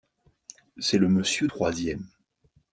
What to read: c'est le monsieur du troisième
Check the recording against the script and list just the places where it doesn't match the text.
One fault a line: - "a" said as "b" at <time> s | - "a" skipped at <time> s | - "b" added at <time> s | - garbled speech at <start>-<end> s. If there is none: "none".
- "du" skipped at 1.5 s